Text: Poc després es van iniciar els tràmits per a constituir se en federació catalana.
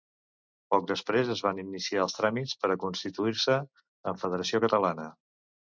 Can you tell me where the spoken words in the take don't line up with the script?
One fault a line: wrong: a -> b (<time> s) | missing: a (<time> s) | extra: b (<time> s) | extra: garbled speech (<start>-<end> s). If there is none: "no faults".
no faults